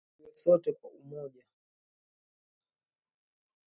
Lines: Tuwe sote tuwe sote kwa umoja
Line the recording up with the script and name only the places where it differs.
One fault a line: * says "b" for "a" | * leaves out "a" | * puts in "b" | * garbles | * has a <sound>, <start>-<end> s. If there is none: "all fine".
* leaves out "tuwe sote"